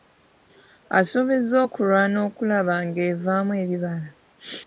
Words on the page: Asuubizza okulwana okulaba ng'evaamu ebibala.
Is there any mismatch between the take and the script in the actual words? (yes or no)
no